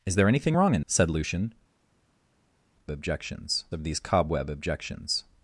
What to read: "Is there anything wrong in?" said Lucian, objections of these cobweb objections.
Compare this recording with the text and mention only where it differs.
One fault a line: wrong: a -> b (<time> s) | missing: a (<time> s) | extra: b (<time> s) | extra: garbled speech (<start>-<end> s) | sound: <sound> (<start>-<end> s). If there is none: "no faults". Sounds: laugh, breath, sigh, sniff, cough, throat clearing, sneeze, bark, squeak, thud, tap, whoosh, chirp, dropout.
no faults